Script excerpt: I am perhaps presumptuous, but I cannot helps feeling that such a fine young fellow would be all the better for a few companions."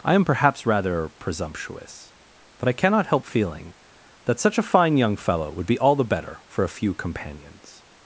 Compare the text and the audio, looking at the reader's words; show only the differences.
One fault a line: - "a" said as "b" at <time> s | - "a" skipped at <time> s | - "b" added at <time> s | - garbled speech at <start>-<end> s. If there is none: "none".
- "rather" added at 0.7 s
- "helps" said as "help" at 3.1 s